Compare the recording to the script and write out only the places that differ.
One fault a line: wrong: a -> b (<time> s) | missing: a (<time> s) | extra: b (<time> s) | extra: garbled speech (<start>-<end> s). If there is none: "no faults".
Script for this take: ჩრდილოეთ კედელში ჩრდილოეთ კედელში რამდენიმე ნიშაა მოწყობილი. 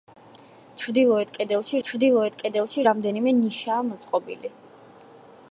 no faults